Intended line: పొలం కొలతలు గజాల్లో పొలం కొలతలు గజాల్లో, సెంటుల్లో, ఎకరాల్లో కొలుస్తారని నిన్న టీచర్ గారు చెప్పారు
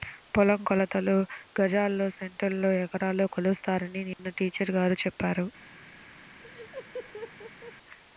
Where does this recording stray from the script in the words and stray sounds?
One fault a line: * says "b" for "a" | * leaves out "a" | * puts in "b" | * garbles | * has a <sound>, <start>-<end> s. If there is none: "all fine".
* leaves out "పొలం కొలతలు గజాల్లో"
* has a dropout, 4.1-4.2 s
* has a laugh, 6.4-7.7 s